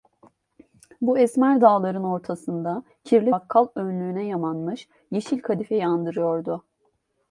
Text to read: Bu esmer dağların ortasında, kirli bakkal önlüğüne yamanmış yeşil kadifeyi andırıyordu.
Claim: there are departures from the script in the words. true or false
false